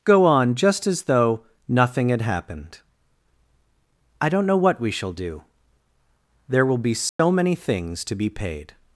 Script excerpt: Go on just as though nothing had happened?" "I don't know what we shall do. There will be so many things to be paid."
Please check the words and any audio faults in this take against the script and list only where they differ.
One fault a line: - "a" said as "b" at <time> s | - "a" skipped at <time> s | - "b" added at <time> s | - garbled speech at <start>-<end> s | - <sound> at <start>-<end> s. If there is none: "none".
- dropout at 7.1-7.2 s